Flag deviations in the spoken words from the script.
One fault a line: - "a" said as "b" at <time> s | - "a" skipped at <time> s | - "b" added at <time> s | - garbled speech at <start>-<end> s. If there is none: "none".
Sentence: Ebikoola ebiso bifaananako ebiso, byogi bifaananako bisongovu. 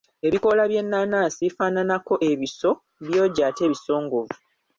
- "ebiso" said as "by'ennaanansi" at 0.7 s
- "bifaananako" said as "ate" at 3.5 s